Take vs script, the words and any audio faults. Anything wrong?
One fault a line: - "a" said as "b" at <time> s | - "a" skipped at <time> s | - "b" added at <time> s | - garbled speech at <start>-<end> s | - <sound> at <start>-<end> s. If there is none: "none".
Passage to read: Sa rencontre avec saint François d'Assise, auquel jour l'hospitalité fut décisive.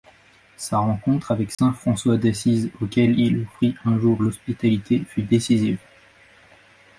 - dropout at 1.5-1.6 s
- "il offrit un" added at 3.2 s